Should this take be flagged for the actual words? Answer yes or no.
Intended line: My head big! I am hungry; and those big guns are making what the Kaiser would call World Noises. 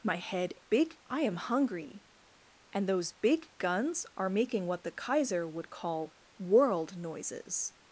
no